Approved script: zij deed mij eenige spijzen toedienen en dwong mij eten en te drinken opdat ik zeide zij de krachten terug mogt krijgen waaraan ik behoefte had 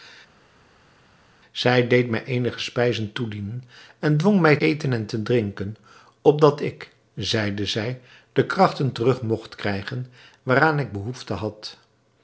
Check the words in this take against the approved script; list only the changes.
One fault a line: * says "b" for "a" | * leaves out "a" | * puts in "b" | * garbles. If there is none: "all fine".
all fine